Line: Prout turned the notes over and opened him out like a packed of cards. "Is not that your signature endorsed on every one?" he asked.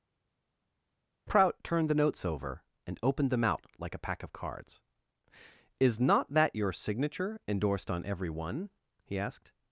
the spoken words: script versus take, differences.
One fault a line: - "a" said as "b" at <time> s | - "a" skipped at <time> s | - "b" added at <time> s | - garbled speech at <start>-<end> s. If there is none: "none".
- "him" said as "them" at 3.3 s
- "packed" said as "pack" at 4.0 s